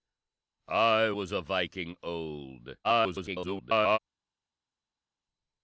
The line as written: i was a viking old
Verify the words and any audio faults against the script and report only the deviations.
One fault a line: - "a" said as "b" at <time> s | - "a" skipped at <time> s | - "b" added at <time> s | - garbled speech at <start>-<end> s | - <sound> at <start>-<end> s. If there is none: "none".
- garbled speech at 2.8-4.0 s